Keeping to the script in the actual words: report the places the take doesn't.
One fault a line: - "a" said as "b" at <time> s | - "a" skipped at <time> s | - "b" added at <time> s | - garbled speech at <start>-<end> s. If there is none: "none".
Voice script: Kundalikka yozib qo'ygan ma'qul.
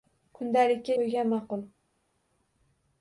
- "yozib" skipped at 1.0 s